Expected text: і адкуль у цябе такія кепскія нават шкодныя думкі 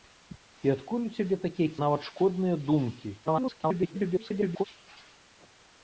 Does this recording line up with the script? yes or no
no